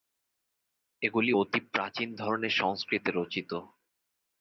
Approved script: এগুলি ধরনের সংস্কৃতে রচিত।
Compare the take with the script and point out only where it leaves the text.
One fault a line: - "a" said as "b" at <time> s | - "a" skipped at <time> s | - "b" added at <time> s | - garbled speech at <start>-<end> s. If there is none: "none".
- "অতি প্রাচীন" added at 1.3 s